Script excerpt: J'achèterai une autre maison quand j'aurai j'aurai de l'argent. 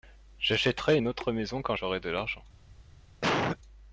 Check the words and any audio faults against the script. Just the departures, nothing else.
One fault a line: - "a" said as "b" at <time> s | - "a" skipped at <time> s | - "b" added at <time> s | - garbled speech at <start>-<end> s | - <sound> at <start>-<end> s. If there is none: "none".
- "j'aurai" skipped at 2.0 s
- cough at 3.2-3.6 s